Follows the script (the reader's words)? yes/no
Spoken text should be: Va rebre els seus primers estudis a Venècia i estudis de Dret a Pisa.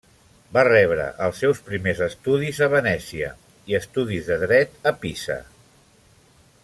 yes